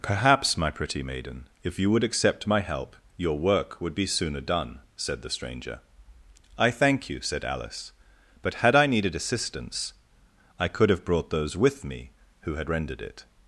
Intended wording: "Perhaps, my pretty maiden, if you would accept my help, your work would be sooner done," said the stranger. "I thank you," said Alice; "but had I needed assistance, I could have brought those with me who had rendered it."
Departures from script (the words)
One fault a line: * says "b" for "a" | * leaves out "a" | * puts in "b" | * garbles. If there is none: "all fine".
all fine